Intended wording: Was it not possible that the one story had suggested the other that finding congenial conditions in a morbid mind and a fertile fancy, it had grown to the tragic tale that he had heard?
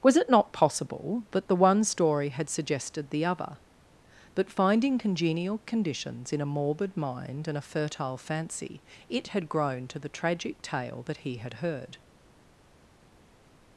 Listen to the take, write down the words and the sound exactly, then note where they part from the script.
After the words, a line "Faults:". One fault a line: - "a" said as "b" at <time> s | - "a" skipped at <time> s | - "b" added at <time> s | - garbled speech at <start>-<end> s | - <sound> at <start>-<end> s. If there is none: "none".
Was it not possible that the one story had suggested the other but finding congenial conditions in a morbid mind and a fertile fancy, it had grown to the tragic tale that he had heard?
Faults:
- "that" said as "but" at 4.3 s